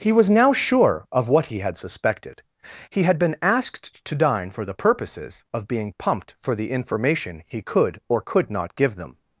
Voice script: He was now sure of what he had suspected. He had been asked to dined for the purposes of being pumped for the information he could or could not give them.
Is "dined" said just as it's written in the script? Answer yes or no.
no